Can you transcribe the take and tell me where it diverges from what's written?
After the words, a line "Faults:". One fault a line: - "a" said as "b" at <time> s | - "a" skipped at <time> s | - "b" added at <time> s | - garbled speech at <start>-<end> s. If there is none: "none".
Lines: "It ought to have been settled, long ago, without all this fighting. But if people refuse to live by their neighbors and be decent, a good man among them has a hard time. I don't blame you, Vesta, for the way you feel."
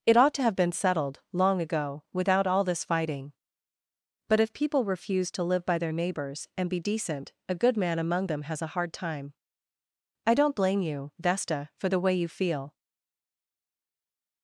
"It ought to have been settled, long ago, without all this fighting. But if people refuse to live by their neighbors and be decent, a good man among them has a hard time. I don't blame you, Vesta, for the way you feel."
Faults:
none